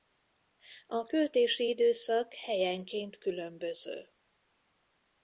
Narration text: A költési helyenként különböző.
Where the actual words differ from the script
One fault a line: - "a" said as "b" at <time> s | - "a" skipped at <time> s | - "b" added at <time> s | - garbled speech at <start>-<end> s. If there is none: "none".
- "időszak" added at 1.7 s